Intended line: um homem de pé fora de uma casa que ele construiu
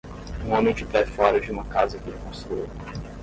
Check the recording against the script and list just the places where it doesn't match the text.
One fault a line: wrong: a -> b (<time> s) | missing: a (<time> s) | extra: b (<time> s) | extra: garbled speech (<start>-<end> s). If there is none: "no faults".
no faults